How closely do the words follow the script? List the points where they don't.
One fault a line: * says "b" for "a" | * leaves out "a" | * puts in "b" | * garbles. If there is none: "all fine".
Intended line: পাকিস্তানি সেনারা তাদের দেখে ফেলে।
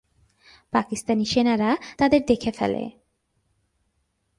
all fine